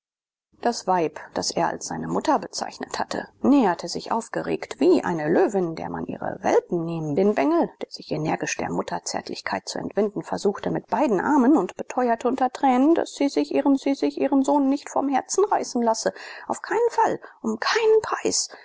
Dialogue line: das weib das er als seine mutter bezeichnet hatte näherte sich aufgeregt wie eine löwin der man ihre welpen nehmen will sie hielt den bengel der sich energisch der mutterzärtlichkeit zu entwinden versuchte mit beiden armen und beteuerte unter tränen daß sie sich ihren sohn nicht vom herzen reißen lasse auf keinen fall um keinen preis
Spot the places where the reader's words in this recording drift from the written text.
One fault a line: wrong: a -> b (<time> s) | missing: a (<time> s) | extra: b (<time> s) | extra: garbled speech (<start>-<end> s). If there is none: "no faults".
missing: will sie hielt (7.2 s)
extra: sie sich ihren (13.8 s)